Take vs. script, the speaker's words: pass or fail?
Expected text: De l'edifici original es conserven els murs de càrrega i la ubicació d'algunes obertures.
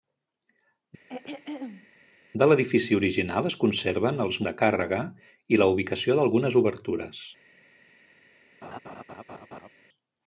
fail